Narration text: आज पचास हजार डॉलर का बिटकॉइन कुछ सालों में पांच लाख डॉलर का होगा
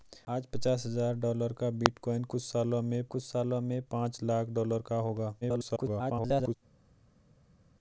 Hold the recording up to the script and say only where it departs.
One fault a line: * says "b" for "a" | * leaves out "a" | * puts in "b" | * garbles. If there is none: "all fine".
* puts in "कुछ सालों में"
* garbles